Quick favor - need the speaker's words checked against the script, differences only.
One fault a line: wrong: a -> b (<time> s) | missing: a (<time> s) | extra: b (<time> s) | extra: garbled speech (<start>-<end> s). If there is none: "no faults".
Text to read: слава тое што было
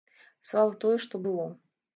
no faults